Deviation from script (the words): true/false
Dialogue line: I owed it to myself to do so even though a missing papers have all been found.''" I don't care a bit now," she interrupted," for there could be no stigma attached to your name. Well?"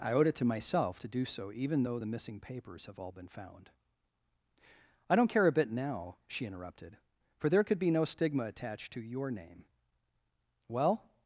true